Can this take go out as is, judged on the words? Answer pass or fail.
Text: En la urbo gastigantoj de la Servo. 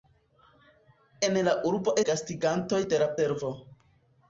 pass